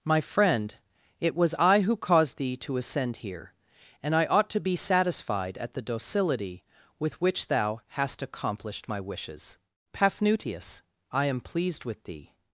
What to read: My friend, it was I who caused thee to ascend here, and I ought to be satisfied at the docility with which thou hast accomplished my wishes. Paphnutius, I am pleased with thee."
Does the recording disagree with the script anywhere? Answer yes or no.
no